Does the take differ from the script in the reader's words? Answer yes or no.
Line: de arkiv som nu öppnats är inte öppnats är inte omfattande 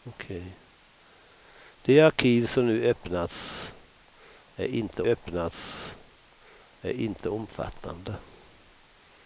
no